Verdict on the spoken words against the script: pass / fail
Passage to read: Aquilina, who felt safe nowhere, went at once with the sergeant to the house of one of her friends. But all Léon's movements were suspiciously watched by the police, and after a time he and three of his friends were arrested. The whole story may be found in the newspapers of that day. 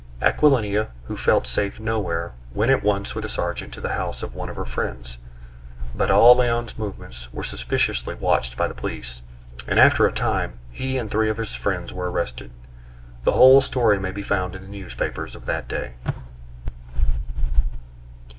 pass